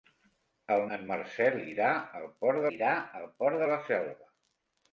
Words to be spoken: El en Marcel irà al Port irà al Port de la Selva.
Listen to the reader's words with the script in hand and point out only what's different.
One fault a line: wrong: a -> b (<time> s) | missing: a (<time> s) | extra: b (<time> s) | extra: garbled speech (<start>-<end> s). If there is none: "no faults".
no faults